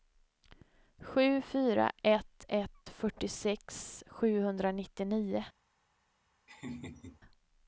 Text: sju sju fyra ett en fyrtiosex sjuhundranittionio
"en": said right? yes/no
no